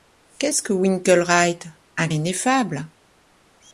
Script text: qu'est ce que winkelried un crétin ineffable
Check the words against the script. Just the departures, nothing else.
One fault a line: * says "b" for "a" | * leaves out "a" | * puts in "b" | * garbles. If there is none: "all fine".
* leaves out "crétin"